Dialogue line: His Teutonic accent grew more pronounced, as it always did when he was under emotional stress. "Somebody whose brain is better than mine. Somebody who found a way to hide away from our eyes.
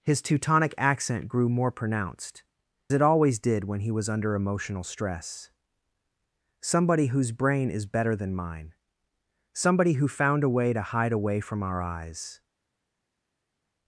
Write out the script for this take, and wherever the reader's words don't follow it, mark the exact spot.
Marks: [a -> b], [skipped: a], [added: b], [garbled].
His Teutonic accent grew more pronounced, [skipped: as] it always did when he was under emotional stress. "Somebody whose brain is better than mine. Somebody who found a way to hide away from our eyes.